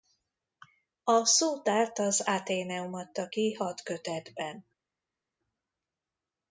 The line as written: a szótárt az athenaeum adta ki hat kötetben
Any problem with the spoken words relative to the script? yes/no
no